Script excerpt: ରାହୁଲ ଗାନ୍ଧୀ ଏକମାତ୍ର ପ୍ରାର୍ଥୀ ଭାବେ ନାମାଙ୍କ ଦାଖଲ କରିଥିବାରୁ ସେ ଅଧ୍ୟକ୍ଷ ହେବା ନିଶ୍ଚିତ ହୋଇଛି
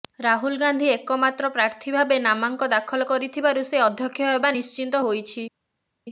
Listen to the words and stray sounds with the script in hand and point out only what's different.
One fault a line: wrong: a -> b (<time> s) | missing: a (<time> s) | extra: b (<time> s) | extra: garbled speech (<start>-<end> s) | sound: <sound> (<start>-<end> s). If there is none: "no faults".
no faults